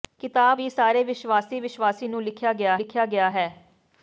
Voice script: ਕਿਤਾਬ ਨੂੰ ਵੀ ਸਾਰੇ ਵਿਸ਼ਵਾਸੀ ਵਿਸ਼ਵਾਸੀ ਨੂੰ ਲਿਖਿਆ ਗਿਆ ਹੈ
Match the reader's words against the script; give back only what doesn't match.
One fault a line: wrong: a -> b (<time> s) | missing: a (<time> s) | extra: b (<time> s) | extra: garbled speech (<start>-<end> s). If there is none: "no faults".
missing: ਨੂੰ (0.6 s)
extra: ਲਿਖਿਆ ਗਿਆ (2.7 s)